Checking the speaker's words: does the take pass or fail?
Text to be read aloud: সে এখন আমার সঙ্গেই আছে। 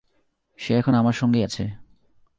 pass